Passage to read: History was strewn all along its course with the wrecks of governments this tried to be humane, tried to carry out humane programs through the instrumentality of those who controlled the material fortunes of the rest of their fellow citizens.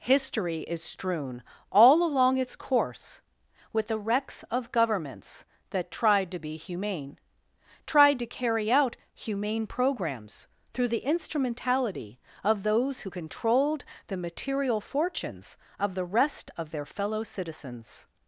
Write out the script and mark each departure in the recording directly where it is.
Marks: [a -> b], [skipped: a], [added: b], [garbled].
History [was -> is] strewn all along its course with the wrecks of governments [this -> that] tried to be humane, tried to carry out humane programs through the instrumentality of those who controlled the material fortunes of the rest of their fellow citizens.